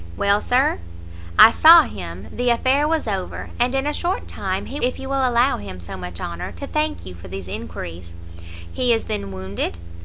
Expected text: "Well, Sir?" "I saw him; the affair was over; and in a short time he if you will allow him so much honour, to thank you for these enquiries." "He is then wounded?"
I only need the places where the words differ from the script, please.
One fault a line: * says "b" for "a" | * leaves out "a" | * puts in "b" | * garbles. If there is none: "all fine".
all fine